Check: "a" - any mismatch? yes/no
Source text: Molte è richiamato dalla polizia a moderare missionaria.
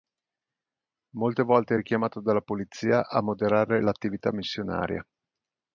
no